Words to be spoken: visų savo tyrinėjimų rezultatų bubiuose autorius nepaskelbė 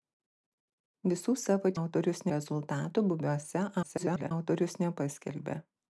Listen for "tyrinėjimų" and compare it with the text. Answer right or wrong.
wrong